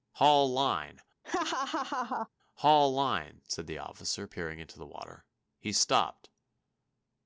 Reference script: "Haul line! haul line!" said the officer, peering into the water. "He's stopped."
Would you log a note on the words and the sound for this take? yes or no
yes